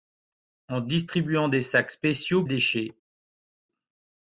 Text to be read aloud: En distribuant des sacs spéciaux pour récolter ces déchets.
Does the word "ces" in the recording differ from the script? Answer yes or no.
yes